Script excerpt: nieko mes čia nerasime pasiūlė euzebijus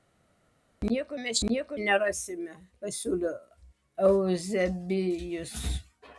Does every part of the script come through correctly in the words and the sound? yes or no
no